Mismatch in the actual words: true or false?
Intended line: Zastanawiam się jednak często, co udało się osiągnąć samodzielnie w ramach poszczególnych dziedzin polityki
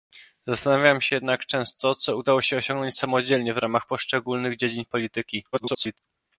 true